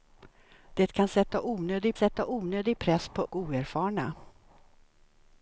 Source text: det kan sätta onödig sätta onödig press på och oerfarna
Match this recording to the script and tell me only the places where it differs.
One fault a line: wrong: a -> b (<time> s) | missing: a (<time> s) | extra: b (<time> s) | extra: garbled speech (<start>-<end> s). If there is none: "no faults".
no faults